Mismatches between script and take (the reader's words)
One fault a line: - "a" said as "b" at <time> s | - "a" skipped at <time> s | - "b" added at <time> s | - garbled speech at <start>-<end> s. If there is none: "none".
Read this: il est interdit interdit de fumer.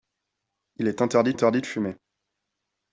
none